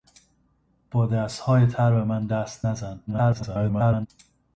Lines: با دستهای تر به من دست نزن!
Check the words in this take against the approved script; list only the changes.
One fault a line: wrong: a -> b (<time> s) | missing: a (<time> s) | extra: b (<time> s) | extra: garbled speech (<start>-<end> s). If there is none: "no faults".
extra: garbled speech (3.1-4.1 s)